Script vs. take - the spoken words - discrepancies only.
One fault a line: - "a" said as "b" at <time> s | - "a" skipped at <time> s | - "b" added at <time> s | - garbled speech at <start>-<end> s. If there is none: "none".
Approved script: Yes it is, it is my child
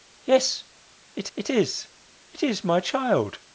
- "it" added at 1.4 s